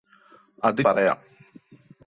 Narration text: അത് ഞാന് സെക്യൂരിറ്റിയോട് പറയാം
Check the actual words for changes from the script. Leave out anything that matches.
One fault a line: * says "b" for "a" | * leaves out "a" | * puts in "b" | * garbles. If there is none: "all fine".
* leaves out "ഞാന് സെക്യൂരിറ്റിയോട്"